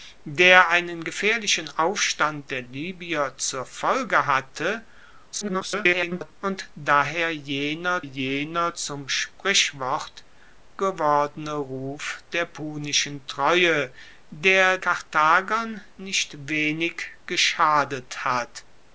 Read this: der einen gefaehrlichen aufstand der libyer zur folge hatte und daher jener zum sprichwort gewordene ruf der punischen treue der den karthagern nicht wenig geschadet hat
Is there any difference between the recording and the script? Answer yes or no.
yes